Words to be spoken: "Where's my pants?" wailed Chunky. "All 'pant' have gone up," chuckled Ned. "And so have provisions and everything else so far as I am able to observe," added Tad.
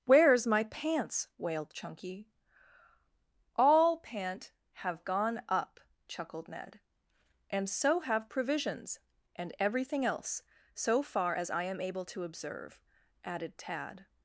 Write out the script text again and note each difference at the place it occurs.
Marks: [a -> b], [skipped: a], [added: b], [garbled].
"Where's my pants?" wailed Chunky. "All 'pant' have gone up," chuckled Ned. "And so have provisions and everything else so far as I am able to observe," added Tad.